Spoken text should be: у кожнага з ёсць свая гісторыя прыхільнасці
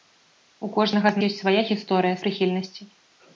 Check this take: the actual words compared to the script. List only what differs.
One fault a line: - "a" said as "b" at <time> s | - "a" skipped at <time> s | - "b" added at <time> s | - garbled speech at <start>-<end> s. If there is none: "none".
none